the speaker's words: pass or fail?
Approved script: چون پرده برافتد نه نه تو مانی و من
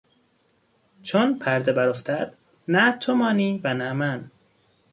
fail